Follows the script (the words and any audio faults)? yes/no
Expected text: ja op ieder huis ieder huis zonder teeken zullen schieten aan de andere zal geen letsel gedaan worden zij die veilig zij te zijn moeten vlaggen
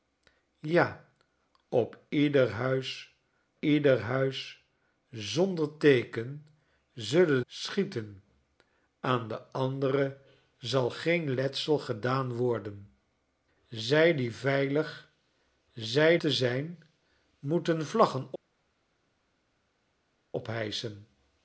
yes